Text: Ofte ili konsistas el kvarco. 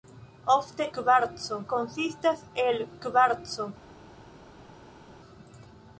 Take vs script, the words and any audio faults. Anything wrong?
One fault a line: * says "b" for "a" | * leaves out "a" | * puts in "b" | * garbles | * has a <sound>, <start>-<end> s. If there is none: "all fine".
* says "kvarco" for "ili"